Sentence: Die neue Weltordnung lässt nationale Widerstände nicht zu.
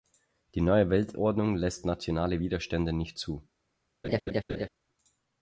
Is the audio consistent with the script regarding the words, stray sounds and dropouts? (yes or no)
no